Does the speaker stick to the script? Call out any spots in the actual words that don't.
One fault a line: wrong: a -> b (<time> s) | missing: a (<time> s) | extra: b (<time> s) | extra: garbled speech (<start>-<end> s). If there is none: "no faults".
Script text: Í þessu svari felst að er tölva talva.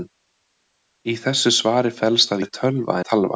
no faults